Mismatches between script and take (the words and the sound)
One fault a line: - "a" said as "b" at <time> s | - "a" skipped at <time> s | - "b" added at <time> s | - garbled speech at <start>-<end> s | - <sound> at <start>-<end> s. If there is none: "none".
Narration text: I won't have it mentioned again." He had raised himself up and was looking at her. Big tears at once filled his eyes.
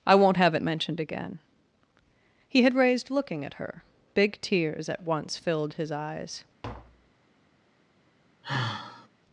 - "himself up and was" skipped at 3.1 s
- tap at 6.6-7.2 s
- sigh at 8.4-9.1 s